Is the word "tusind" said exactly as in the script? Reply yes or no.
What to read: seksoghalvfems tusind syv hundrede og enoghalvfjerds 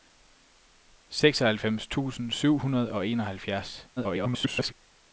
yes